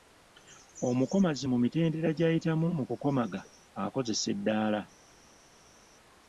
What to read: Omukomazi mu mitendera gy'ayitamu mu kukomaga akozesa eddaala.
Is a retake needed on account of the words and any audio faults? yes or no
no